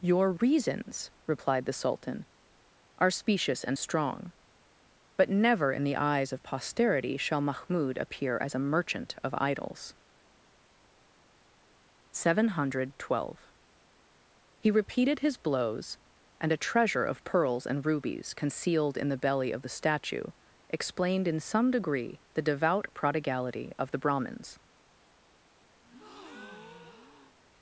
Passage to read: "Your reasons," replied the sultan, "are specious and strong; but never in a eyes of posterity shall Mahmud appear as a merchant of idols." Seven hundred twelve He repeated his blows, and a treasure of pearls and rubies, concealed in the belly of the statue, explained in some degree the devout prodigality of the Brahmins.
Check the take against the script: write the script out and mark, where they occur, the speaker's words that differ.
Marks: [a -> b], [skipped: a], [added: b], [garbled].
"Your reasons," replied the sultan, "are specious and strong; but never in [a -> the] eyes of posterity shall Mahmud appear as a merchant of idols." Seven hundred twelve He repeated his blows, and a treasure of pearls and rubies, concealed in the belly of the statue, explained in some degree the devout prodigality of the Brahmins.